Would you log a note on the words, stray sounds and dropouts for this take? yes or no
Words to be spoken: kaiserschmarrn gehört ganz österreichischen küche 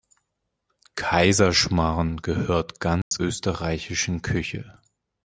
yes